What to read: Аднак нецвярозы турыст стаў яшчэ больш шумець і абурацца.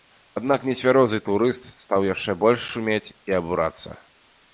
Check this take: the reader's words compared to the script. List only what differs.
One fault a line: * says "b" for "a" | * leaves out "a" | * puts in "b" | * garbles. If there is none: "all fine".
all fine